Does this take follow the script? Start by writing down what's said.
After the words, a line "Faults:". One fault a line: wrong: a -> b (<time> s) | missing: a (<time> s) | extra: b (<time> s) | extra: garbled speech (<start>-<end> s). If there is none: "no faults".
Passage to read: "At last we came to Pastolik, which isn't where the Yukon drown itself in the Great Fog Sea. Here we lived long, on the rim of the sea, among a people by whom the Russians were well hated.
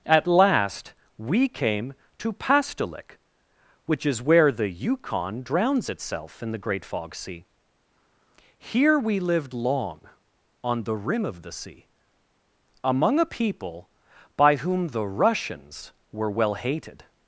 "At last we came to Pastolik, which is where the Yukon drowns itself in the Great Fog Sea. Here we lived long, on the rim of the sea, among a people by whom the Russians were well hated.
Faults:
wrong: isn't -> is (4.0 s)
wrong: drown -> drowns (5.4 s)